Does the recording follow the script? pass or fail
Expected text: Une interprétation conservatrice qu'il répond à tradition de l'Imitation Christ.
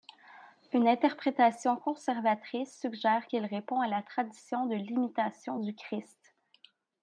fail